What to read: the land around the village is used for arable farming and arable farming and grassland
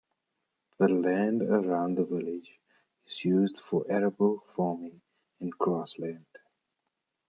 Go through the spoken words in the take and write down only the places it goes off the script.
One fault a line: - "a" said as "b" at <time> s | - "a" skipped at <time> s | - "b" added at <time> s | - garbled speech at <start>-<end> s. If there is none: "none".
- "arable farming and" skipped at 5.5 s